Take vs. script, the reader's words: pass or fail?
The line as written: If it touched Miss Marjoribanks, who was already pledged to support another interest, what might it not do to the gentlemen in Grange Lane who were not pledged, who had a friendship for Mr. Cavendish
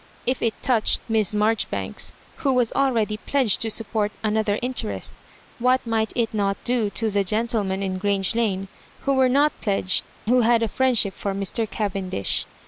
pass